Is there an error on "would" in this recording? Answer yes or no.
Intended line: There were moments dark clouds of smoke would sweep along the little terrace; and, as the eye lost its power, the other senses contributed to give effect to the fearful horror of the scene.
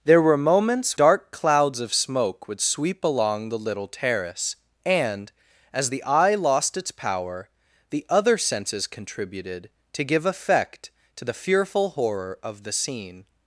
no